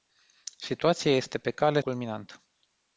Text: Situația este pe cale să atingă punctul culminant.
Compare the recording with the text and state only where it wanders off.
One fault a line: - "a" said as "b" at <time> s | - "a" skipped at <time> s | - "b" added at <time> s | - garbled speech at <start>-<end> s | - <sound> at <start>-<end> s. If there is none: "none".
- "să atingă punctul" skipped at 1.8 s